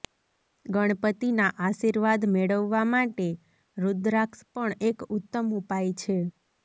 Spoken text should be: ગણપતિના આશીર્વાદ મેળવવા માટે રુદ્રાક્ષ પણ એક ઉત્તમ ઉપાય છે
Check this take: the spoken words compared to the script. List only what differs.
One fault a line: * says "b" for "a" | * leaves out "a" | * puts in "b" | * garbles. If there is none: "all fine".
all fine